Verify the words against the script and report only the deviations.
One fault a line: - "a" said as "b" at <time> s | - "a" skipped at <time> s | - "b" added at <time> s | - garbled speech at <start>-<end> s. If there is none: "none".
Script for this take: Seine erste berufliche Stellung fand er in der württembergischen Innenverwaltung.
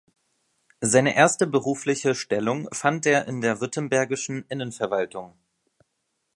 none